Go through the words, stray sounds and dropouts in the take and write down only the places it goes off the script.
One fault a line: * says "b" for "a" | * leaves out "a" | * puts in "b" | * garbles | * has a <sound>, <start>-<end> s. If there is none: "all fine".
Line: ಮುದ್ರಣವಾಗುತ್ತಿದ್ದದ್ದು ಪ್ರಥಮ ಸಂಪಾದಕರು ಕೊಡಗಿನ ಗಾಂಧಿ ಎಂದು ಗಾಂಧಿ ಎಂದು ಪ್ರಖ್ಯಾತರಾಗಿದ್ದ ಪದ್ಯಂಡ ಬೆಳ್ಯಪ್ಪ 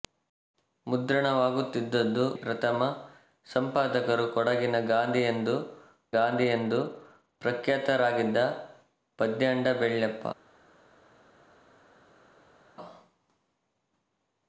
all fine